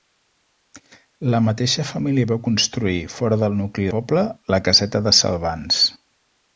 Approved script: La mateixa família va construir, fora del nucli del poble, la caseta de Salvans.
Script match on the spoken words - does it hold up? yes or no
no